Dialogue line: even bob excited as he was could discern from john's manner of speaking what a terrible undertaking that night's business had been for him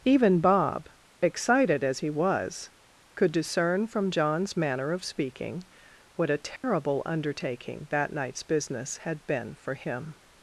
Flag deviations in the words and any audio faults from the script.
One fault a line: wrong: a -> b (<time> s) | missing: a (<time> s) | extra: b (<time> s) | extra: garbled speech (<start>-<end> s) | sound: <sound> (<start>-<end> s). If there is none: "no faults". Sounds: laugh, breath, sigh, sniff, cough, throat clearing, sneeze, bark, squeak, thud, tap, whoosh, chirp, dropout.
sound: dropout (6.6-6.6 s)